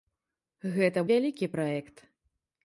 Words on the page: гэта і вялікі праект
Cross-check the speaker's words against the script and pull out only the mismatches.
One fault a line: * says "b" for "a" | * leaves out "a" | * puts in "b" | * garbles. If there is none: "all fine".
all fine